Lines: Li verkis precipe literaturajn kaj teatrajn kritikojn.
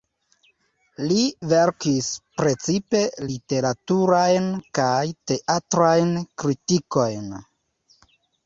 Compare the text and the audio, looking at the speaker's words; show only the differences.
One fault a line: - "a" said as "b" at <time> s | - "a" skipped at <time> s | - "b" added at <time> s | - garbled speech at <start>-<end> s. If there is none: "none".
none